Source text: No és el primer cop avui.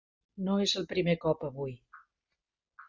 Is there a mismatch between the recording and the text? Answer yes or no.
no